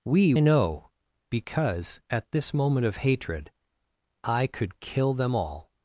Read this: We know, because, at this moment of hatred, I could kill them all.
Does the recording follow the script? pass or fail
pass